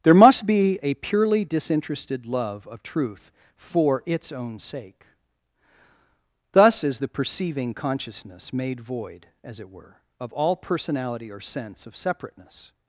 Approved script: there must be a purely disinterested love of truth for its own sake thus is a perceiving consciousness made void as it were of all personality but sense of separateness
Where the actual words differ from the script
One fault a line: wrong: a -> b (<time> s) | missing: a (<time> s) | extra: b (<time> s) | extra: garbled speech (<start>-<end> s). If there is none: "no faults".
wrong: a -> the (7.0 s)
wrong: but -> or (11.3 s)